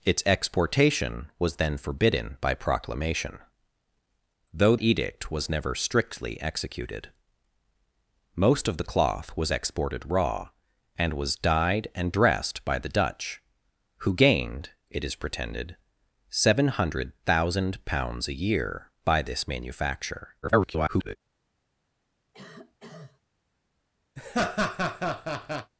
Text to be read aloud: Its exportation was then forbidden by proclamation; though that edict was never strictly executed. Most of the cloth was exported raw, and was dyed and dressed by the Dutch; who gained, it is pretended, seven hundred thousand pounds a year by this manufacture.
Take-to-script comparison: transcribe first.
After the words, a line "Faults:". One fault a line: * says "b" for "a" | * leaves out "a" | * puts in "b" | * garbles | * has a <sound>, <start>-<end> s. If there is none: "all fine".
Its exportation was then forbidden by proclamation; though edict was never strictly executed. Most of the cloth was exported raw, and was dyed and dressed by the Dutch; who gained, it is pretended, seven hundred thousand pounds a year by this manufacture. [garbled]
Faults:
* leaves out "that"
* garbles
* has a cough, 22.3-23.2 s
* has a laugh, 24.2-25.7 s